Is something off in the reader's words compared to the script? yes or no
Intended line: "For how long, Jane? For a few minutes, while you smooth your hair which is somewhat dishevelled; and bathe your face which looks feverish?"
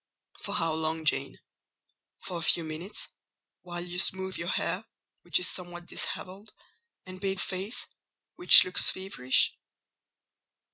yes